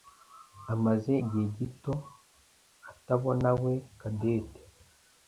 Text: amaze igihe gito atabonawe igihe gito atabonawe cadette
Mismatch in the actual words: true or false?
true